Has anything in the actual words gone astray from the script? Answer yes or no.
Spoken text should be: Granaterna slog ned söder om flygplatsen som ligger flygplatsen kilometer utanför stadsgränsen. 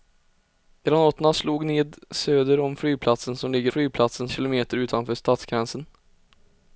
no